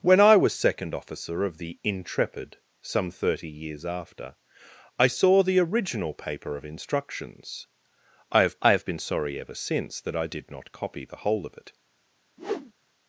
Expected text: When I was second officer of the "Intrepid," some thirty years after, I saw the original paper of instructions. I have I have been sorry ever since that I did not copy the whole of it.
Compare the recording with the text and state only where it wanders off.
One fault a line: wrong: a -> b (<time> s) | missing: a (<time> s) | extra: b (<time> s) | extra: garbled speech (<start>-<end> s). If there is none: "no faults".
no faults